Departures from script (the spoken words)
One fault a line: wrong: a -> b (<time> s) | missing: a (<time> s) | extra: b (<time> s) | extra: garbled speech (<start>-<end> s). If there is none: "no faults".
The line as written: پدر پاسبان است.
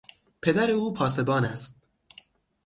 extra: او (0.7 s)